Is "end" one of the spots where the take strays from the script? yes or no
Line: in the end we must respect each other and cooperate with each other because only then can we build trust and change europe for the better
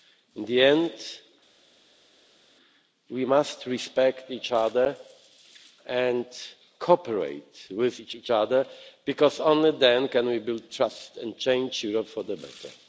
no